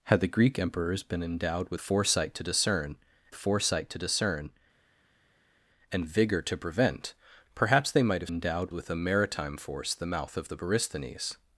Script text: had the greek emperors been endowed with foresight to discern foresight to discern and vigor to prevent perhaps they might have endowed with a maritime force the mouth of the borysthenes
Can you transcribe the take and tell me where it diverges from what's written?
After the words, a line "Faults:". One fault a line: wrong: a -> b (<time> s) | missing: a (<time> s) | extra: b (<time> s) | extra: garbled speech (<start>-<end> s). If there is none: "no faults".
had the greek emperors been endowed with foresight to discern foresight to discern and vigor to prevent perhaps they might have endowed with a maritime force the mouth of the borysthenes
Faults:
no faults